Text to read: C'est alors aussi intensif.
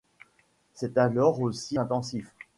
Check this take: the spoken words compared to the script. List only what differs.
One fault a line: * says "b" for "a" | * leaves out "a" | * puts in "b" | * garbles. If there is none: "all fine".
all fine